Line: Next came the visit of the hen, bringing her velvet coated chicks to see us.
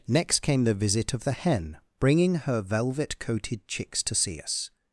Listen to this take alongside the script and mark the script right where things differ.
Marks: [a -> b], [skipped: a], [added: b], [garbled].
Next came the visit of the hen, bringing her velvet coated chicks to see us.